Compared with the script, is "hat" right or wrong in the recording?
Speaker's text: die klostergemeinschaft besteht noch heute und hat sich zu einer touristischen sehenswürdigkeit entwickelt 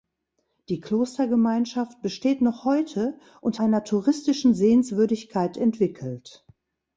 wrong